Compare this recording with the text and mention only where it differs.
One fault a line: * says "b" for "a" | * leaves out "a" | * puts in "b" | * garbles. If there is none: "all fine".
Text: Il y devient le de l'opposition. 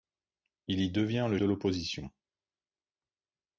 all fine